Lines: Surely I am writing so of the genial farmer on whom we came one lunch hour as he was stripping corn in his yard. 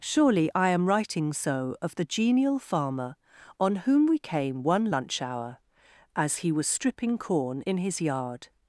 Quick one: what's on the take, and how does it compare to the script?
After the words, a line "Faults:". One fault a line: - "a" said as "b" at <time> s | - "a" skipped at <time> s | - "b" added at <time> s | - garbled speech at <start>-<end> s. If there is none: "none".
Surely I am writing so of the genial farmer on whom we came one lunch hour as he was stripping corn in his yard.
Faults:
none